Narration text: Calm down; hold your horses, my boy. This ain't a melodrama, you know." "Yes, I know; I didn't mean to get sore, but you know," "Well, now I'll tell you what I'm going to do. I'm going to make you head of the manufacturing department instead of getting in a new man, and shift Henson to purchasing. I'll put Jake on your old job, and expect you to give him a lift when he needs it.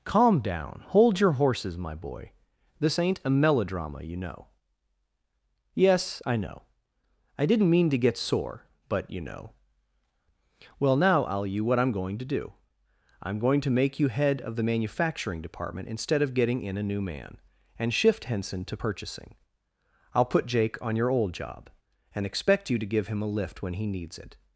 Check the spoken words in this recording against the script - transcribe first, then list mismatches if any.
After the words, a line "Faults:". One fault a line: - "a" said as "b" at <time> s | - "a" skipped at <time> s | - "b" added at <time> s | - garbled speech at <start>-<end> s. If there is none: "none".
Calm down; hold your horses, my boy. This ain't a melodrama, you know." "Yes, I know; I didn't mean to get sore, but you know," "Well, now I'll you what I'm going to do. I'm going to make you head of the manufacturing department instead of getting in a new man, and shift Henson to purchasing. I'll put Jake on your old job, and expect you to give him a lift when he needs it.
Faults:
- "tell" skipped at 11.4 s